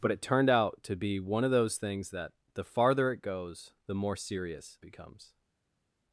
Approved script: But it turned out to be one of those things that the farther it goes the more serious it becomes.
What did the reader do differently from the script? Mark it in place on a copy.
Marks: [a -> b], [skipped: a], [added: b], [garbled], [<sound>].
But it turned out to be one of those things that the farther it goes the more serious [skipped: it] becomes.